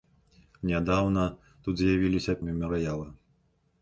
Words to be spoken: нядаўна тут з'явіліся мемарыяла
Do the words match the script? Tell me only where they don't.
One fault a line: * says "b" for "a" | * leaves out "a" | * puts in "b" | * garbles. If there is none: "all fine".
all fine